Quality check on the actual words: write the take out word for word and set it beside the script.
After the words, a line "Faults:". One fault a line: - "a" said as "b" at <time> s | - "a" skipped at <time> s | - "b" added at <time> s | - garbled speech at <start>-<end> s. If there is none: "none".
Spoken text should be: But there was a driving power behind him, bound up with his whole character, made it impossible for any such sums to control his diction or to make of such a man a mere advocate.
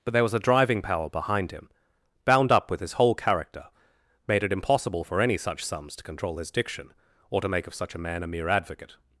But there was a driving power behind him, bound up with his whole character, made it impossible for any such sums to control his diction or to make of such a man a mere advocate.
Faults:
none